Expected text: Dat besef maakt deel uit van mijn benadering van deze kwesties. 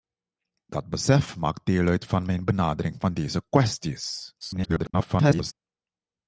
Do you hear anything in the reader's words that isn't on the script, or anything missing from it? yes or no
yes